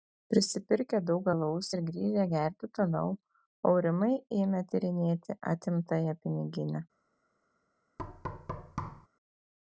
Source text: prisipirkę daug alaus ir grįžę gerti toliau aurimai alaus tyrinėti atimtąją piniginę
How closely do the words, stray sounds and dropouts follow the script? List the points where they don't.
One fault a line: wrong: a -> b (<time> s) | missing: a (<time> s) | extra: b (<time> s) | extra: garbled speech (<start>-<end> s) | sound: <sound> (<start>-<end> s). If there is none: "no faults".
wrong: alaus -> ėmė (4.4 s)
sound: thud (8.0-9.1 s)